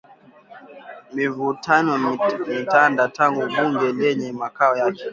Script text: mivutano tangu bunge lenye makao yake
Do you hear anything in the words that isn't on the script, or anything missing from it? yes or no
yes